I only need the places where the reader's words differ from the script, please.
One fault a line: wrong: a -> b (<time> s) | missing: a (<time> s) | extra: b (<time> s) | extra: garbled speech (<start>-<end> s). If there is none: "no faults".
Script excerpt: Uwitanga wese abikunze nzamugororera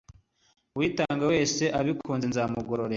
no faults